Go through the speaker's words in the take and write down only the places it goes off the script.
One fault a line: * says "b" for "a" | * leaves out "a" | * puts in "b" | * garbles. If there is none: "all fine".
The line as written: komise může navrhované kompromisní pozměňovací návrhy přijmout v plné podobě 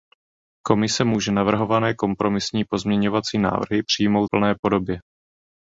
* leaves out "v"